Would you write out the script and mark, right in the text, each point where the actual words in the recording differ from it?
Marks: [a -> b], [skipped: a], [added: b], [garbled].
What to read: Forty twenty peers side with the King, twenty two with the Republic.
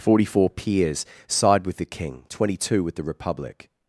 Forty [twenty -> four] peers side with the King, twenty two with the Republic.